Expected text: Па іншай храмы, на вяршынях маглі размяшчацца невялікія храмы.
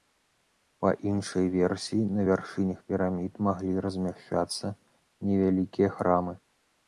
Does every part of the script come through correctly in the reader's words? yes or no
no